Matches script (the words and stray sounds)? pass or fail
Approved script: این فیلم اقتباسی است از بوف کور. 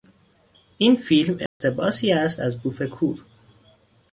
fail